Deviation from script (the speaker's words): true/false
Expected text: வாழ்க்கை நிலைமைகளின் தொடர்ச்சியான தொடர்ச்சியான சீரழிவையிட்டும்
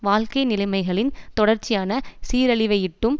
true